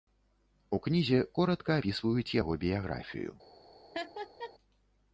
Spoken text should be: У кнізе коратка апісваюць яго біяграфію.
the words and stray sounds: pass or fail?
fail